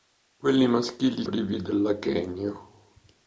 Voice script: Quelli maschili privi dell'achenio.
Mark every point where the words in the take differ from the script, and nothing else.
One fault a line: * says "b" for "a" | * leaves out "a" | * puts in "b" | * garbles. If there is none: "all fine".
all fine